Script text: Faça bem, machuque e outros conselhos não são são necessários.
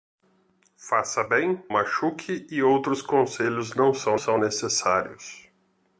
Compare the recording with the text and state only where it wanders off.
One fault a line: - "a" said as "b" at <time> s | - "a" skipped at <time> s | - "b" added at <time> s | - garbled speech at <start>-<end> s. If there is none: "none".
none